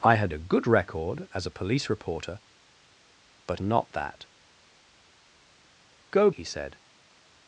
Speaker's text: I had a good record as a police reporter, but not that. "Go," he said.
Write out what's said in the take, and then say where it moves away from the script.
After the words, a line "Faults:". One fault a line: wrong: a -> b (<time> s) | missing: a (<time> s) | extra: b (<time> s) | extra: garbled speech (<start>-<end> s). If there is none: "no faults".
I had a good record as a police reporter, but not that. "Go," he said.
Faults:
no faults